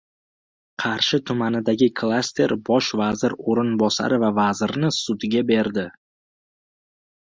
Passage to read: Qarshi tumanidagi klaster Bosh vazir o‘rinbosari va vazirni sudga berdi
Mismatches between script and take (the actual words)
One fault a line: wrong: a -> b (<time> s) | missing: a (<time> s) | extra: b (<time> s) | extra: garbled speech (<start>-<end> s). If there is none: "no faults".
no faults